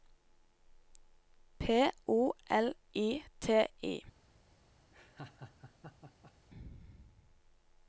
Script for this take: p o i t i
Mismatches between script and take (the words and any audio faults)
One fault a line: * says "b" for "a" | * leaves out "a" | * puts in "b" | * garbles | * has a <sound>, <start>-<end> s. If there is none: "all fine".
* puts in "l"
* has a laugh, 4.9-6.3 s